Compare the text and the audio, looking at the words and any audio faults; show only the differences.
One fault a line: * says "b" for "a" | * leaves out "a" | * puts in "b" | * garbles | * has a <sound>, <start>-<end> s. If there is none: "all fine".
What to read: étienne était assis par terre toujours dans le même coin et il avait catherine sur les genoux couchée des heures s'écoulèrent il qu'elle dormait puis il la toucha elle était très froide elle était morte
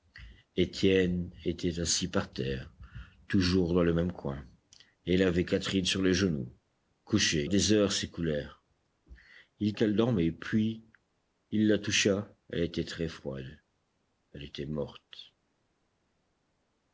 all fine